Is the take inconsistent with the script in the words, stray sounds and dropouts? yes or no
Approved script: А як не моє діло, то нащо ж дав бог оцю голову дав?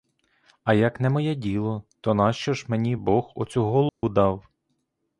yes